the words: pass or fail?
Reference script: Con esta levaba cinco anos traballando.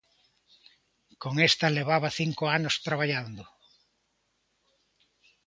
pass